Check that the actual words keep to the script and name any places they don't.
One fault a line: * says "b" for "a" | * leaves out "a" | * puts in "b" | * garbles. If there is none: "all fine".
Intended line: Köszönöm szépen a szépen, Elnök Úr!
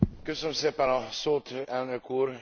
* says "szót" for "szépen"